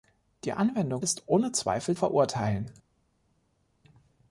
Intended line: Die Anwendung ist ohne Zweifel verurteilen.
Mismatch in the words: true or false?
false